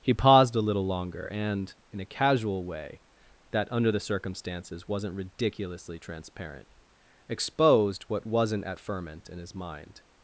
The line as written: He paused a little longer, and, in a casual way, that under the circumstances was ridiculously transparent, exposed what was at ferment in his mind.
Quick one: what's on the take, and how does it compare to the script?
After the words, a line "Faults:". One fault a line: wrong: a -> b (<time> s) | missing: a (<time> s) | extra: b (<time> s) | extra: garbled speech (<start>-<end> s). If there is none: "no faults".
He paused a little longer, and, in a casual way, that under the circumstances wasn't ridiculously transparent, exposed what wasn't at ferment in his mind.
Faults:
wrong: was -> wasn't (4.9 s)
wrong: was -> wasn't (8.2 s)